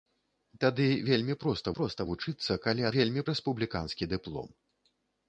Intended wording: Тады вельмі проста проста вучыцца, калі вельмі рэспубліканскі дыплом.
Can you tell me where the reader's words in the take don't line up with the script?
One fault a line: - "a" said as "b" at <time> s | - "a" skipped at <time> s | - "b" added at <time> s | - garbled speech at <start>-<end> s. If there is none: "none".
none